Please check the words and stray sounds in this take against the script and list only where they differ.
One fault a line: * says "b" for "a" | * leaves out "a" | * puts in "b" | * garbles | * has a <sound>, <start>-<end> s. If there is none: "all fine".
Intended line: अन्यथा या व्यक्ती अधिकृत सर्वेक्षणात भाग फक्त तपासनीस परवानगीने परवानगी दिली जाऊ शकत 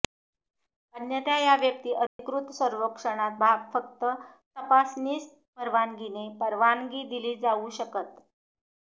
* has a dropout, 2.1-2.2 s